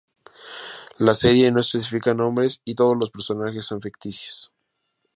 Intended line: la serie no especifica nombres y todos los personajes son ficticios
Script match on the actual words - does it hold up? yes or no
yes